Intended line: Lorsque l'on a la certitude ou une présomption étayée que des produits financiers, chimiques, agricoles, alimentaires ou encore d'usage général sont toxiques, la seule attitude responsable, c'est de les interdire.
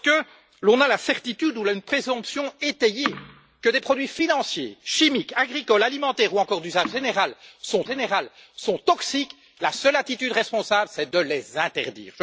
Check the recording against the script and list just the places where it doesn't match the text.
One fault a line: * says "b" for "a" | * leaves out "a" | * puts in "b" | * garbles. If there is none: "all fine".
* puts in "général sont"